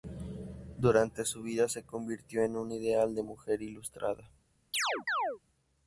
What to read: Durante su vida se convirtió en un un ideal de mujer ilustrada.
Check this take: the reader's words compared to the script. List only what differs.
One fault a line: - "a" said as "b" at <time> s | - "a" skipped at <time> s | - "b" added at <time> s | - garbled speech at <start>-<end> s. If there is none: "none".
- "un" skipped at 2.7 s